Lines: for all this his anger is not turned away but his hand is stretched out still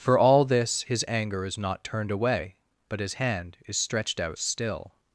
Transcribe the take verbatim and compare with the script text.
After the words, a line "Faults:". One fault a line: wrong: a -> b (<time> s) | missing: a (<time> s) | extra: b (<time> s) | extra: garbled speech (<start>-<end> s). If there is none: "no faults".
for all this his anger is not turned away but his hand is stretched out still
Faults:
no faults